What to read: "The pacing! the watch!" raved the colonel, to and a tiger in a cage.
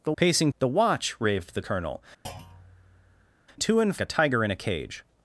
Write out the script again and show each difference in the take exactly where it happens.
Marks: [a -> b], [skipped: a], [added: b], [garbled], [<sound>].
"The pacing! the watch!" raved the colonel, [thud] to and a tiger in a cage.